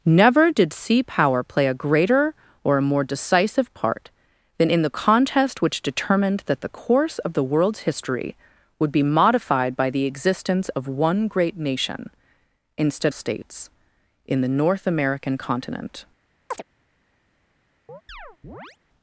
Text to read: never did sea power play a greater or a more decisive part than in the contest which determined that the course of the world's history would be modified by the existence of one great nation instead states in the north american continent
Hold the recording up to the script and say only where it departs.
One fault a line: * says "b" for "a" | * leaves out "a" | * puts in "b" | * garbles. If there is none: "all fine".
all fine